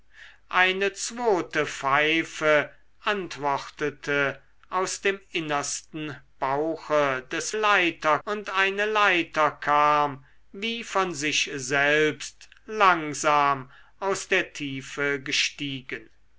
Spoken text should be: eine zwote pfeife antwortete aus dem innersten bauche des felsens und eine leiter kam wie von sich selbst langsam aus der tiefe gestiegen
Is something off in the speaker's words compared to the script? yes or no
yes